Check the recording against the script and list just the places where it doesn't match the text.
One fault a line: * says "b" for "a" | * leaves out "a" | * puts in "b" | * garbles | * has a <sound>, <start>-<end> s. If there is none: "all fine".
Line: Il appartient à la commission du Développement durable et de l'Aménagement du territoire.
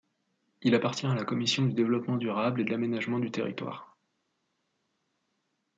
all fine